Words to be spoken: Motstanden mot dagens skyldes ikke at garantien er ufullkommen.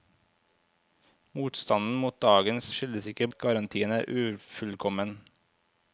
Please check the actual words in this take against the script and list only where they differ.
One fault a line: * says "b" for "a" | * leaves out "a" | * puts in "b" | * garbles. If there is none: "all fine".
all fine